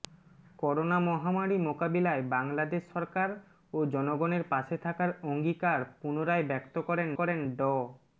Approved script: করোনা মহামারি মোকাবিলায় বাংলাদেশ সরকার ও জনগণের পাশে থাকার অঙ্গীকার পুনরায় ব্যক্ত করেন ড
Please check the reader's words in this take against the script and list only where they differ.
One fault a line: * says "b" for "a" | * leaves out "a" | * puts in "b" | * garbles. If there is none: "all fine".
* puts in "করেন"